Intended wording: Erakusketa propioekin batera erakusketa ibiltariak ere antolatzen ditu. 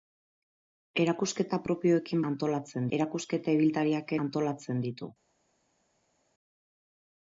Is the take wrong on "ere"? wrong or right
wrong